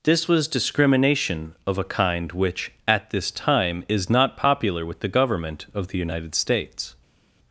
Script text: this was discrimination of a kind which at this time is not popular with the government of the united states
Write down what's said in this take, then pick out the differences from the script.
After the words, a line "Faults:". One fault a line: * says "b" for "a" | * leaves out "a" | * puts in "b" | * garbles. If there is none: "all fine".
this was discrimination of a kind which at this time is not popular with the government of the united states
Faults:
all fine